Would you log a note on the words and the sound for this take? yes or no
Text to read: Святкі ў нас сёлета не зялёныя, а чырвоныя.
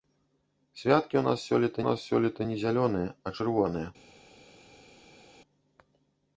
yes